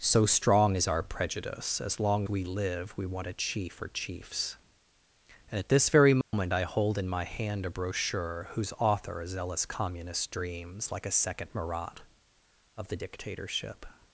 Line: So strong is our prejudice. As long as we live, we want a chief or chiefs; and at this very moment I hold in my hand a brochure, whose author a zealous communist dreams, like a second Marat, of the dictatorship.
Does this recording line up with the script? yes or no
no